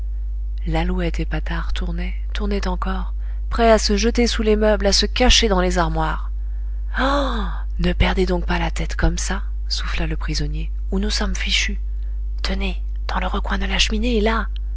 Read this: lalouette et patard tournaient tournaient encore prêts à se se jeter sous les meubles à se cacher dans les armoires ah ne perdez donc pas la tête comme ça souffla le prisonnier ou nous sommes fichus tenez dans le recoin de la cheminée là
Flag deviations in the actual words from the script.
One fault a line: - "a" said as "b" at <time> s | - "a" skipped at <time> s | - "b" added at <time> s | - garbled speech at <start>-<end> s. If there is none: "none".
- "se" skipped at 4.0 s